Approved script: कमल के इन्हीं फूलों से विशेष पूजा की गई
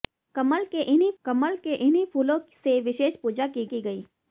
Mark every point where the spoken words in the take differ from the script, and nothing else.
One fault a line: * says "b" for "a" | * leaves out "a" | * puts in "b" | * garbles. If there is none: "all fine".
* puts in "कमल के इन्हीं"
* puts in "की"